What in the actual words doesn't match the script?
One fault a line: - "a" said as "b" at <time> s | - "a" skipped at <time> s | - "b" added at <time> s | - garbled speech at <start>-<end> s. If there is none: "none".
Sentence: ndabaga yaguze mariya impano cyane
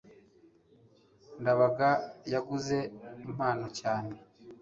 - "mariya" skipped at 2.8 s